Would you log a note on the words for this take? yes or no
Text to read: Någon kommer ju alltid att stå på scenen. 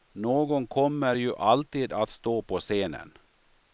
no